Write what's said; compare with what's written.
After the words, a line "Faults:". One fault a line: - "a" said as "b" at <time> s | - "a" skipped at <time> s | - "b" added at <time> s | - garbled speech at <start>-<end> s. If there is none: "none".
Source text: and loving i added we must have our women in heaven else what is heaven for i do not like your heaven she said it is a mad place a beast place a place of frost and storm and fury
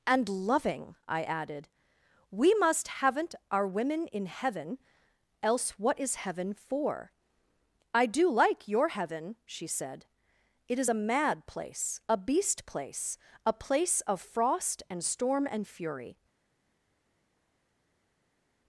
and loving i added we must haven't our women in heaven else what is heaven for i do like your heaven she said it is a mad place a beast place a place of frost and storm and fury
Faults:
- "have" said as "haven't" at 2.9 s
- "not" skipped at 8.3 s